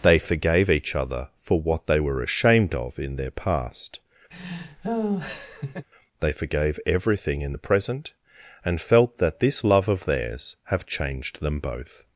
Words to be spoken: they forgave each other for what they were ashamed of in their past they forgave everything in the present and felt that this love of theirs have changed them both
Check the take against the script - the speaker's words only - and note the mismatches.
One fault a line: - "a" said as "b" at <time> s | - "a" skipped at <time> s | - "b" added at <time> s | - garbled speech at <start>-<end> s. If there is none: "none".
none